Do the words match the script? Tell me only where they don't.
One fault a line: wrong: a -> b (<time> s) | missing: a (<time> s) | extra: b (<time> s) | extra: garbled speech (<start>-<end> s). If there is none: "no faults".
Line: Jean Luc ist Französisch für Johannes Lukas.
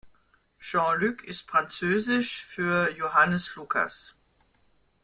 no faults